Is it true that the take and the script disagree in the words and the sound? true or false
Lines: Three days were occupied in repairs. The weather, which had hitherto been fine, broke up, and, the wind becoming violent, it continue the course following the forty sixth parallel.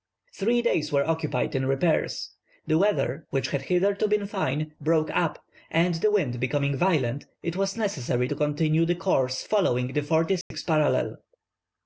true